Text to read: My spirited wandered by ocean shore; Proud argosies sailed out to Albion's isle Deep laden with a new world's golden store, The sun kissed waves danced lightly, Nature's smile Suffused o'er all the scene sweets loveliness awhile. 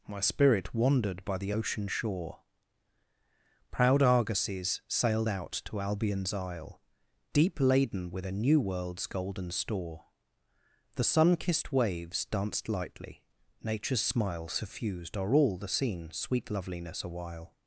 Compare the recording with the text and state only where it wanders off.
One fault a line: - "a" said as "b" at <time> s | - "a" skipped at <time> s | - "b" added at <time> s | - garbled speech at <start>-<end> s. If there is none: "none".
- "spirited" said as "spirit" at 0.2 s
- "the" added at 1.4 s
- "sweets" said as "sweet" at 16.1 s